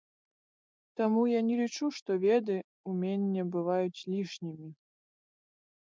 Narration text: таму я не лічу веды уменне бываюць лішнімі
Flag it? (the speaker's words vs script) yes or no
yes